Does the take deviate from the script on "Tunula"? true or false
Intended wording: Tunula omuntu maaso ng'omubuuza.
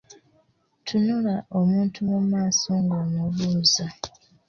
false